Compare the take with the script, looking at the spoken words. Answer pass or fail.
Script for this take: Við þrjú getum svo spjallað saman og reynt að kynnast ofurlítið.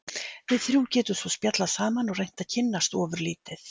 pass